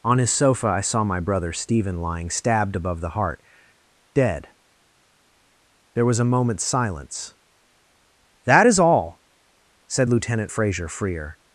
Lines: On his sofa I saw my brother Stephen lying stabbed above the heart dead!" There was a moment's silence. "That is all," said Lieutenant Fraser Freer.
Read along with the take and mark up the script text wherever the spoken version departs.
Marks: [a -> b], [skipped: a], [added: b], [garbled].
On his sofa I saw my brother Stephen lying stabbed above the heart dead!" There was a moment's silence. "That is all," said Lieutenant Fraser Freer.